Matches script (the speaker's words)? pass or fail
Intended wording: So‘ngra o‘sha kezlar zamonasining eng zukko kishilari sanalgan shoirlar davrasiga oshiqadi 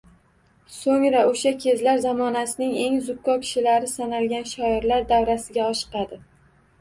pass